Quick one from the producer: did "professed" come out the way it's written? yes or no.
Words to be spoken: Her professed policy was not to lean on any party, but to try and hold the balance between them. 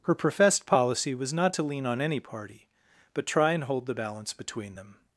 yes